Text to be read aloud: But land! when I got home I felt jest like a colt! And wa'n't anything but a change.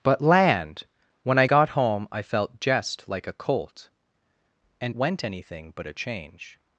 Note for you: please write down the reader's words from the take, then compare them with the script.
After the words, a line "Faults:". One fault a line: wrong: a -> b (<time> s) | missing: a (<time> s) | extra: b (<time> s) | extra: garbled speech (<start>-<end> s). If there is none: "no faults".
But land! when I got home I felt jest like a colt! And wa'n't anything but a change.
Faults:
no faults